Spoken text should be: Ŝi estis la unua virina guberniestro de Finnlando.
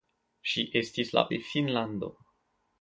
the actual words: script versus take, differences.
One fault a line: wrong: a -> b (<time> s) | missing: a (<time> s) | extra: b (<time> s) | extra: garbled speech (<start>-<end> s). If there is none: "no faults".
missing: unua virina guberniestro (1.2 s)